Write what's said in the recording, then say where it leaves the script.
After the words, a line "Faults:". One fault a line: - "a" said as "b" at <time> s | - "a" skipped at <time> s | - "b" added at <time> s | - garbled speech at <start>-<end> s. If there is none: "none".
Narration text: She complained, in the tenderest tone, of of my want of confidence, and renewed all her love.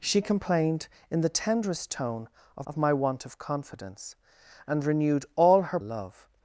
She complained, in the tenderest tone, of of my want of confidence, and renewed all her love.
Faults:
none